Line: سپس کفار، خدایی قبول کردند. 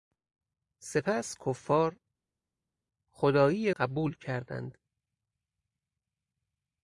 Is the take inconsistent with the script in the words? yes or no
no